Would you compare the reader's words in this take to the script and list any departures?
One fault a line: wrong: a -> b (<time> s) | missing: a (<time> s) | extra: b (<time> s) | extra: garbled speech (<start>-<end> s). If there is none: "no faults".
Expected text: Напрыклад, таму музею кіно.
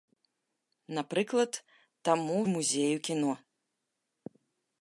no faults